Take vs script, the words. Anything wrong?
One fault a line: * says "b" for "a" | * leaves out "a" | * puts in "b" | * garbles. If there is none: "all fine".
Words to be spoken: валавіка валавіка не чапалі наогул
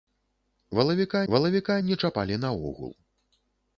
all fine